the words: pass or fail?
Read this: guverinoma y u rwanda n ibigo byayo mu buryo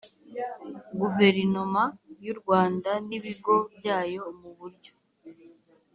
pass